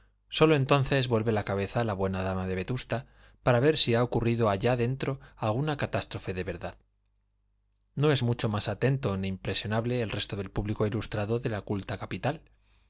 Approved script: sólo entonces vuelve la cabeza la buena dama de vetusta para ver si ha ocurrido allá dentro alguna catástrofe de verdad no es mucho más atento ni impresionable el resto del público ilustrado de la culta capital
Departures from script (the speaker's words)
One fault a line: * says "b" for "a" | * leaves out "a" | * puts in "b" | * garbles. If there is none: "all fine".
all fine